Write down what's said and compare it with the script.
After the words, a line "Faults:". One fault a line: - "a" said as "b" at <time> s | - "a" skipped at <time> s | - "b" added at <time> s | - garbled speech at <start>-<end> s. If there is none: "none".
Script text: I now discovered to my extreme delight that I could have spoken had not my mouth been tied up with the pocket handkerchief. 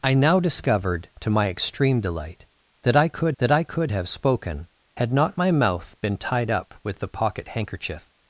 I now discovered to my extreme delight that I could that I could have spoken had not my mouth been tied up with the pocket handkerchief.
Faults:
- "that I could" added at 3.4 s